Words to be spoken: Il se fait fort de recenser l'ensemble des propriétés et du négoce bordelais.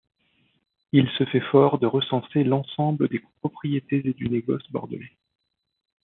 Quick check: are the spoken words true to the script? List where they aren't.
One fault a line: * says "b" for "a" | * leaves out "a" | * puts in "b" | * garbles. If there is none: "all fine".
all fine